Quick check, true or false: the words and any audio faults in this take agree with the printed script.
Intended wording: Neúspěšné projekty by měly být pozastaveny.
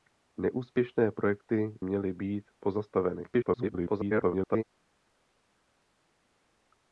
false